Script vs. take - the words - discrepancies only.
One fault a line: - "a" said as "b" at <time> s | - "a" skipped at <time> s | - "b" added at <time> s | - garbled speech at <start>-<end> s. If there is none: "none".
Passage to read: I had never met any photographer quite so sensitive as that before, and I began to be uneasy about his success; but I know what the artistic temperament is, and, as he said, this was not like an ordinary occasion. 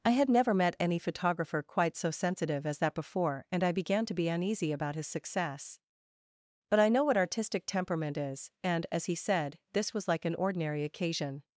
- "the" skipped at 7.2 s
- "not" skipped at 10.1 s